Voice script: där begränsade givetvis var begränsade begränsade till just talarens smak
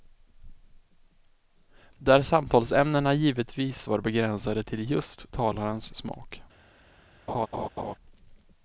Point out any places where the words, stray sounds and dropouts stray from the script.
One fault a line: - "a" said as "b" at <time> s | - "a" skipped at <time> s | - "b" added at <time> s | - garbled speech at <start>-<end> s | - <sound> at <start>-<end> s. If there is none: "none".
- "begränsade" said as "samtalsämnena" at 2.2 s
- "begränsade" skipped at 4.6 s
- laugh at 7.3-7.9 s